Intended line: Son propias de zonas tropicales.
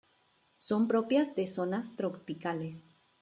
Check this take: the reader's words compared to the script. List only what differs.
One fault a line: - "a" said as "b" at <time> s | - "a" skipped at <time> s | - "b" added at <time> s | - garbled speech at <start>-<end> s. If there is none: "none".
none